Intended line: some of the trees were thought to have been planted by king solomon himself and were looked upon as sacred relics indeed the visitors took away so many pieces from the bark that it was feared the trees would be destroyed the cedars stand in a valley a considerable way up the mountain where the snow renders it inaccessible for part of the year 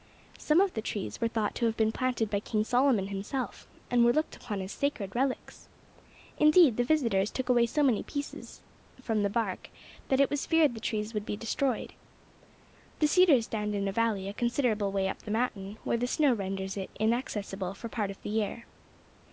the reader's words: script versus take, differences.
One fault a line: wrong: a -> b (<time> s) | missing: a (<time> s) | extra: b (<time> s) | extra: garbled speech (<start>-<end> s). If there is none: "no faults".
no faults